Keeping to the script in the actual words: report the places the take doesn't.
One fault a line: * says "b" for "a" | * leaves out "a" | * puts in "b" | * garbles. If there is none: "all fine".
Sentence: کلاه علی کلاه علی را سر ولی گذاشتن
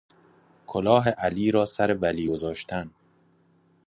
* leaves out "کلاه علی"